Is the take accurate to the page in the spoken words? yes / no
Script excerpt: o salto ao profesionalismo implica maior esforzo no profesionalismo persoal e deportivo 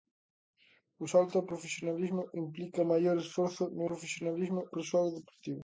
yes